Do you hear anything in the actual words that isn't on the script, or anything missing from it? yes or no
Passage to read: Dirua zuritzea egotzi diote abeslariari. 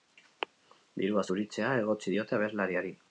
no